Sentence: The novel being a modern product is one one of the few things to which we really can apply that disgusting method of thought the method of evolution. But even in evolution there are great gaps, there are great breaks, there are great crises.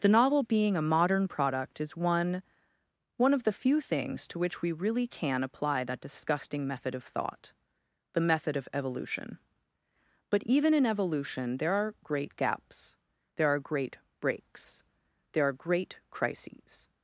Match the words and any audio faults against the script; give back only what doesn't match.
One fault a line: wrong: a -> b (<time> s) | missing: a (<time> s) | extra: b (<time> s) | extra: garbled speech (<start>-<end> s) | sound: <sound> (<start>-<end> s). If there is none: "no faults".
no faults